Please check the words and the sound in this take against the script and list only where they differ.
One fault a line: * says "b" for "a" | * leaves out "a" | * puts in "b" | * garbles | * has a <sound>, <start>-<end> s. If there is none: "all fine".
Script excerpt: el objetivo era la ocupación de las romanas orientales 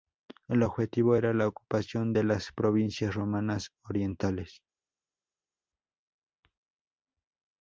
* puts in "provincias"